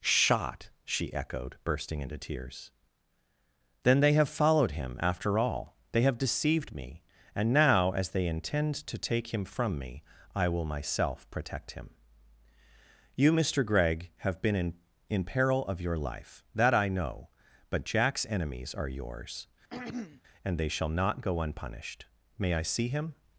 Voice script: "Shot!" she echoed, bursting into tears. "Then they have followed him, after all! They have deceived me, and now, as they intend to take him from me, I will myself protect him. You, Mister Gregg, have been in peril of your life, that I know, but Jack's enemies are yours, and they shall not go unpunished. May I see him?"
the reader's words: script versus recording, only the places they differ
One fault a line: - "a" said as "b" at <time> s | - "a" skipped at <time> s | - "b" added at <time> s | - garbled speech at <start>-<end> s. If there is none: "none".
- "in" added at 15.1 s